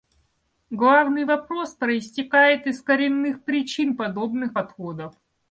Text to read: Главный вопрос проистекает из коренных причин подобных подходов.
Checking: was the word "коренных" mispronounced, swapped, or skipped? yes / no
no